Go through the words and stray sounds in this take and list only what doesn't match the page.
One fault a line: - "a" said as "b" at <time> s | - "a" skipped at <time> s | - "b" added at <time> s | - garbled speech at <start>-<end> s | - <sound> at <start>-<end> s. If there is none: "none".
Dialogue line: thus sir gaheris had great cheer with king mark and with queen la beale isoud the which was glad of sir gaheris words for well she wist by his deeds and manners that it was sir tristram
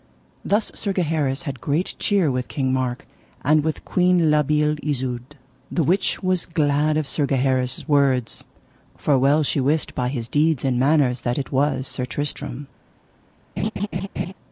- laugh at 13.6-14.3 s